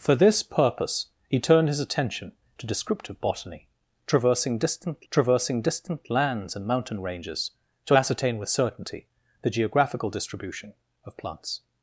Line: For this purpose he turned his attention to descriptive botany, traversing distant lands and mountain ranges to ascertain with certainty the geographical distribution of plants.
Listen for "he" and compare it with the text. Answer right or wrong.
right